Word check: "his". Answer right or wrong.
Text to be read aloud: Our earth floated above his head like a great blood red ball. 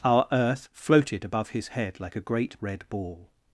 right